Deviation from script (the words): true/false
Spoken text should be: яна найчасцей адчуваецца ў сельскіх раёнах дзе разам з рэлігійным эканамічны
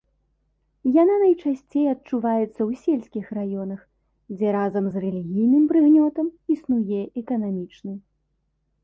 true